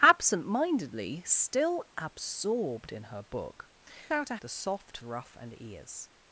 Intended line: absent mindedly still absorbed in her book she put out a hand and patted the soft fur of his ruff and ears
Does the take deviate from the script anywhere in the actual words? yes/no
yes